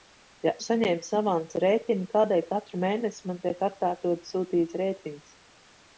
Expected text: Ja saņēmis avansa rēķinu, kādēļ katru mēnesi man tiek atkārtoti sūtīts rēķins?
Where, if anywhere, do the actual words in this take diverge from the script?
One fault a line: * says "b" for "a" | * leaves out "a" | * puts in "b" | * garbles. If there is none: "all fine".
all fine